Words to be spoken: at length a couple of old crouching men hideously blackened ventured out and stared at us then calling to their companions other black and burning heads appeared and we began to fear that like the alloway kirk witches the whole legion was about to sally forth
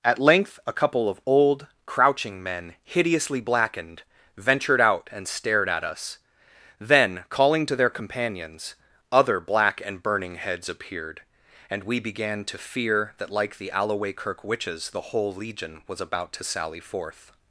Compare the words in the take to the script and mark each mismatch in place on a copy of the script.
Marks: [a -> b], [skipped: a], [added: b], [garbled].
at length a couple of old crouching men hideously blackened ventured out and stared at us then calling to their companions other black and burning heads appeared and we began to fear that like the alloway kirk witches the whole legion was about to sally forth